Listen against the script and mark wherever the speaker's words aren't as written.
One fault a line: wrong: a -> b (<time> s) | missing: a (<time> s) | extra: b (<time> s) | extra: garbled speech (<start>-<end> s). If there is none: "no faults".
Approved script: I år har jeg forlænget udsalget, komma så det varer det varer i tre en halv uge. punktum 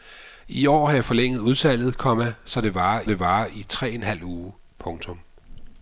no faults